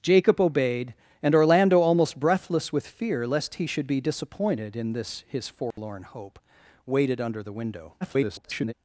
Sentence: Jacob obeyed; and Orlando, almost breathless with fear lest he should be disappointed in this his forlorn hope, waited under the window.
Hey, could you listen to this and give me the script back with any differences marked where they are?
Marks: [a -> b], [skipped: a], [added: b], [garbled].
Jacob obeyed; and Orlando, almost breathless with fear lest he should be disappointed in this his forlorn hope, waited under the window. [garbled]